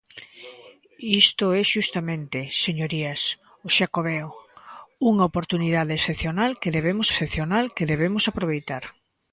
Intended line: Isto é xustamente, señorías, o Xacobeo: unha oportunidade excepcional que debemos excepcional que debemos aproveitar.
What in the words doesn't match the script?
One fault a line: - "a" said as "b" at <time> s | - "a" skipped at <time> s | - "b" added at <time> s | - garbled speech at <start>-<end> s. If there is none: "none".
none